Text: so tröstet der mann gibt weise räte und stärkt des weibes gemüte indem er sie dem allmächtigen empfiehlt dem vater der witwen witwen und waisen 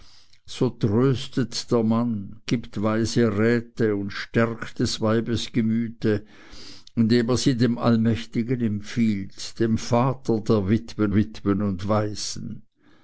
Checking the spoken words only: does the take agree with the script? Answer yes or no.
yes